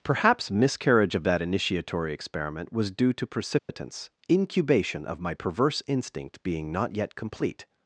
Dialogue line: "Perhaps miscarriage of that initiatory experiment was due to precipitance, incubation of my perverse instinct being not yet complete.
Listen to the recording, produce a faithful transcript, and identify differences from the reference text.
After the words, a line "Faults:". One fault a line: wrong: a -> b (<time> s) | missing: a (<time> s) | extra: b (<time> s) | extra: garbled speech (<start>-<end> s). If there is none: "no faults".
"Perhaps miscarriage of that initiatory experiment was due to precipitance, incubation of my perverse instinct being not yet complete.
Faults:
no faults